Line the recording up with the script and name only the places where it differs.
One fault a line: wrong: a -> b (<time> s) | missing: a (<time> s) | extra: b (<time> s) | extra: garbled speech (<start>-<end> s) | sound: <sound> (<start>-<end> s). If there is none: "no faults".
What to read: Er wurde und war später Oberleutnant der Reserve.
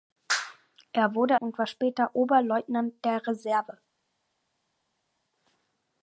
no faults